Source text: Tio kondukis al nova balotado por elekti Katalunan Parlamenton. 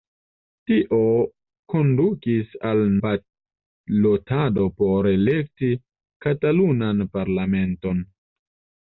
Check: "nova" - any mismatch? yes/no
yes